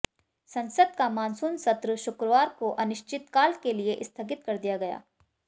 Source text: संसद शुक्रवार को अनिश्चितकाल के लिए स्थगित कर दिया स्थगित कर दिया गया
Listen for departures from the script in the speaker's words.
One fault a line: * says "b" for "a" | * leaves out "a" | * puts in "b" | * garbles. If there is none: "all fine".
* puts in "का मानसून सत्र"
* leaves out "स्थगित कर दिया"